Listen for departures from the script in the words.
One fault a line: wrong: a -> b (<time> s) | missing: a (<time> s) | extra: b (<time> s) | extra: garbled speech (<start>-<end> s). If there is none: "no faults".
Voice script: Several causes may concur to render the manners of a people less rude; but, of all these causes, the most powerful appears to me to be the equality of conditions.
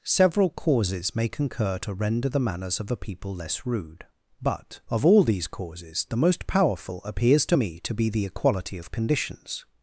no faults